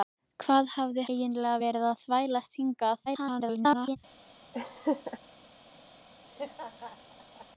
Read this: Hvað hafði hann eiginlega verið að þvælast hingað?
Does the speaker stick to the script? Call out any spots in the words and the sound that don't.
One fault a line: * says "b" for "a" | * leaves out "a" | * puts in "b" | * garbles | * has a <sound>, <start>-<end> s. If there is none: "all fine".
* leaves out "hann"
* garbles
* has a laugh, 4.5-5.2 s
* has a laugh, 6.2-7.5 s